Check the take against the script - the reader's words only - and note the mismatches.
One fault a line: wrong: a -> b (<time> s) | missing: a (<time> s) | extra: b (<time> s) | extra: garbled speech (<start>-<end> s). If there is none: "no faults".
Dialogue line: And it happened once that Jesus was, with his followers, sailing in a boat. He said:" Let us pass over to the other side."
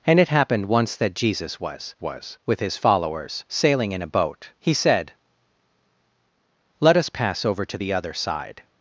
extra: was (2.0 s)